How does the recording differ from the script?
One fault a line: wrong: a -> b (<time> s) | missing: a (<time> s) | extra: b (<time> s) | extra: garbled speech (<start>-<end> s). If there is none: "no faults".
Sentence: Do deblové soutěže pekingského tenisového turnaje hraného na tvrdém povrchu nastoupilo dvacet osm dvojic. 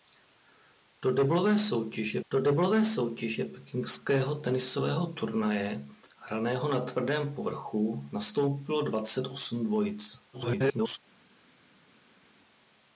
extra: do deblové soutěže (2.3 s)
extra: garbled speech (10.3-11.0 s)